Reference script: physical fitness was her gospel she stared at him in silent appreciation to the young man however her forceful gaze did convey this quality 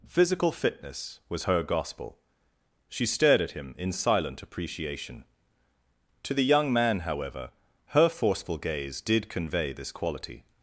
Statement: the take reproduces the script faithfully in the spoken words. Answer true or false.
true